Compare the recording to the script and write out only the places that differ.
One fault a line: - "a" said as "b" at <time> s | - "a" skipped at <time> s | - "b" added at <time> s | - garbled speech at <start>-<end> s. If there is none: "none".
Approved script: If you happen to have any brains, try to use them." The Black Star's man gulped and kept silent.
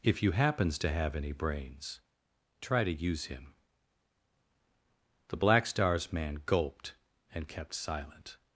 - "happen" said as "happens" at 0.3 s
- "them" said as "him" at 3.2 s